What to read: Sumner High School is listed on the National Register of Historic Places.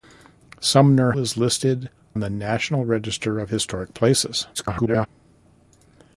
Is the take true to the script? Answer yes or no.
no